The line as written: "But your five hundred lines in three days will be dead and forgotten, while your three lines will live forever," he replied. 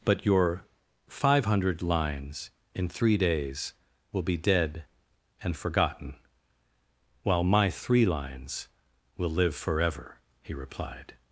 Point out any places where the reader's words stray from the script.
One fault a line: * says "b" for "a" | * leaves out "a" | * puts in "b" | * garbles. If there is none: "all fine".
* says "my" for "your"